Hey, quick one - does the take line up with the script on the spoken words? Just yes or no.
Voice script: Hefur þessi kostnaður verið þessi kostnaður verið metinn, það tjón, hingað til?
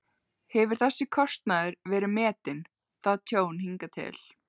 no